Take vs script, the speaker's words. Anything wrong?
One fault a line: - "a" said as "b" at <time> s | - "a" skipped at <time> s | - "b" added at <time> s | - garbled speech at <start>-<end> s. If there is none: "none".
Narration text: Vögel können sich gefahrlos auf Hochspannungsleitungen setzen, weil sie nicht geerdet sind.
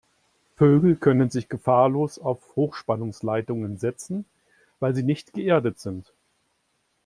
none